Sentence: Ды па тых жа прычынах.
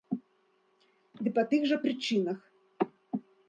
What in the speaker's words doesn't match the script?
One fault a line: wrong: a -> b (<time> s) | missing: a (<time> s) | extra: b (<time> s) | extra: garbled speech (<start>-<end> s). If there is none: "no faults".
no faults